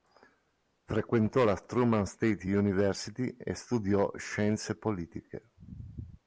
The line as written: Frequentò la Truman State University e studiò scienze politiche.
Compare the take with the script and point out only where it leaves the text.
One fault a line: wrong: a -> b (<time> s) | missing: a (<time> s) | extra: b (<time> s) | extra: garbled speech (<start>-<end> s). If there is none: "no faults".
no faults